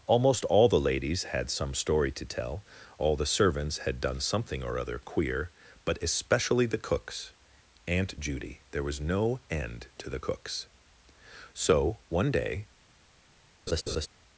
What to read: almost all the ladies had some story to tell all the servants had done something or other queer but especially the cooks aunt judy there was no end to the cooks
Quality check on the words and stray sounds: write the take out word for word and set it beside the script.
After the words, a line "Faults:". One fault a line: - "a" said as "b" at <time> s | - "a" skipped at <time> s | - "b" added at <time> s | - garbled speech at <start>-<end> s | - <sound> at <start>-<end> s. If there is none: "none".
almost all the ladies had some story to tell all the servants had done something or other queer but especially the cooks aunt judy there was no end to the cooks so one day
Faults:
- "so one day" added at 11.5 s
- laugh at 13.7-14.1 s